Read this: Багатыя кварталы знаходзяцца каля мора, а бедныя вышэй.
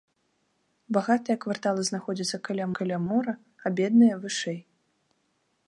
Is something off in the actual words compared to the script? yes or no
yes